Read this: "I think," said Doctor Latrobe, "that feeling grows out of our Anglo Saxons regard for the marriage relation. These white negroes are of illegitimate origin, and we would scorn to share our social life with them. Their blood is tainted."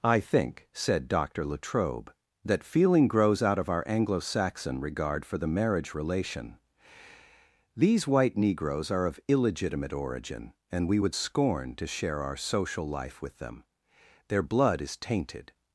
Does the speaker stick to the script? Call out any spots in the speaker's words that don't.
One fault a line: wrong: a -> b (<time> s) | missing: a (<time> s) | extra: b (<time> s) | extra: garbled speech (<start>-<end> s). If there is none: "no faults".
wrong: Saxons -> Saxon (4.2 s)